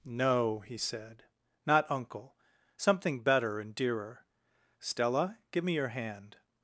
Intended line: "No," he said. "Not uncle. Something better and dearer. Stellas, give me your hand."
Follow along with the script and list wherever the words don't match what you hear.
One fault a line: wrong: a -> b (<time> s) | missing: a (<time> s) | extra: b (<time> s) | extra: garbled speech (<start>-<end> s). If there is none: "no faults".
wrong: Stellas -> Stella (4.8 s)